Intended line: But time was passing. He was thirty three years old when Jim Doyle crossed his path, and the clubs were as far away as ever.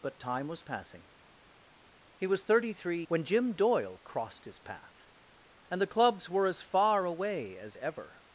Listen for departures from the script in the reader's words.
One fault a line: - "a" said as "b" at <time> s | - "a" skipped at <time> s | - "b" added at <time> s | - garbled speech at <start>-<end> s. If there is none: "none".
- "years old" skipped at 3.0 s